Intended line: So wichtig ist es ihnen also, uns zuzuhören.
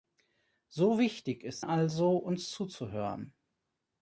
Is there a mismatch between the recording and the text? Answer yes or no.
yes